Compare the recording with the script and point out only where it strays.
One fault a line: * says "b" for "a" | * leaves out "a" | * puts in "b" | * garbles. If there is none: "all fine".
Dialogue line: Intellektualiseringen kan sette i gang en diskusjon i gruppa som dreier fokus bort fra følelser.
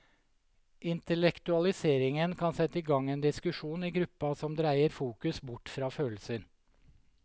all fine